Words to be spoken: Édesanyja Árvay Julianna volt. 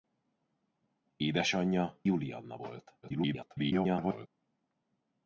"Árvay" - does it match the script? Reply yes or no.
no